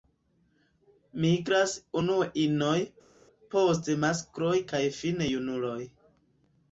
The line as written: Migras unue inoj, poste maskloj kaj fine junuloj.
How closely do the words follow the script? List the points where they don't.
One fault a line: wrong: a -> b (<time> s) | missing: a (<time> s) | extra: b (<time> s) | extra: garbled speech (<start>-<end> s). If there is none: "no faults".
no faults